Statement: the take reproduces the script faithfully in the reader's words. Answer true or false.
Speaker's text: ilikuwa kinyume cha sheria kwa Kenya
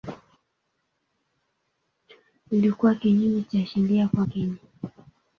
true